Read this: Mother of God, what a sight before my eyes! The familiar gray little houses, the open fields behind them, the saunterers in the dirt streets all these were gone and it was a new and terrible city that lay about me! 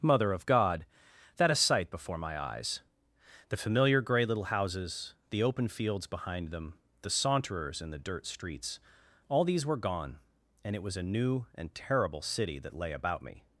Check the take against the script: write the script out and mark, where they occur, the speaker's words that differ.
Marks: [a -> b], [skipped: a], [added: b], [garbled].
Mother of God, [what -> that] a sight before my eyes! The familiar gray little houses, the open fields behind them, the saunterers in the dirt streets all these were gone and it was a new and terrible city that lay about me!